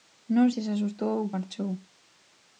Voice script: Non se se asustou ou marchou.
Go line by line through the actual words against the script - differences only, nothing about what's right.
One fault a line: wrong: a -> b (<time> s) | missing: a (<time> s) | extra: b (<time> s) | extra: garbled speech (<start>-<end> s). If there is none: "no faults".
no faults